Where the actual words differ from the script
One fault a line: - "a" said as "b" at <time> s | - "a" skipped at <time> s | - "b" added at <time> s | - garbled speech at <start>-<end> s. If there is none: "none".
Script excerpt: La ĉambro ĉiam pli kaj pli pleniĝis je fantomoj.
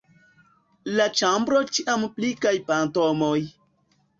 - "pli pleniĝis je" skipped at 2.5 s